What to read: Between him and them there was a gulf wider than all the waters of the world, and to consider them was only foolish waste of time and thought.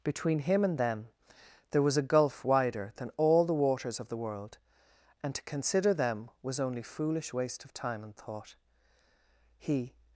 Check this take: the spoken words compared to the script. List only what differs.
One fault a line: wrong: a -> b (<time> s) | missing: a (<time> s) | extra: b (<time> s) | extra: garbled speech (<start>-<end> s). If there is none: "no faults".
extra: He (9.6 s)